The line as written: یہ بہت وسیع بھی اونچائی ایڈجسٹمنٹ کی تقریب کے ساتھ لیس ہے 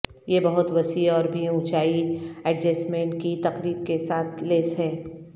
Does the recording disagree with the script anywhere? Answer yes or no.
yes